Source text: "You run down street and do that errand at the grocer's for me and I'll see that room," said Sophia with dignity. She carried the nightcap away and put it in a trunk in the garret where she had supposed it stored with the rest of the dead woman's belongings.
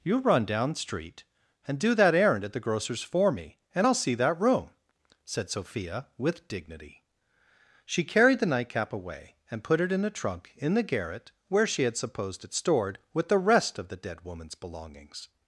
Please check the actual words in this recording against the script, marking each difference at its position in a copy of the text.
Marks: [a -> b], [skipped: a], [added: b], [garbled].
"You run down street and do that errand at the grocer's for me and I'll see that room," said Sophia with dignity. She carried the nightcap away and put it in a trunk in the garret where she had supposed it stored with the rest of the dead woman's belongings.